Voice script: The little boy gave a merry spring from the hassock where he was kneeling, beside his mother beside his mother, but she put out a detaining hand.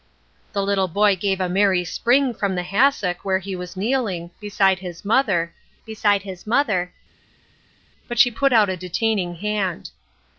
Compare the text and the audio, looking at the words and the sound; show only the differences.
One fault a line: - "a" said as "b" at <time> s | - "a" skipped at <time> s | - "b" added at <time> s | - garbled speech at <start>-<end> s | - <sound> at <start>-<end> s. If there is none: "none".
none